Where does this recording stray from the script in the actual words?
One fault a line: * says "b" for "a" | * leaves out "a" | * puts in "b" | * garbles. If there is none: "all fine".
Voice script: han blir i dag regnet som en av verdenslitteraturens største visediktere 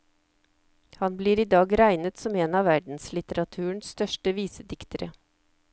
all fine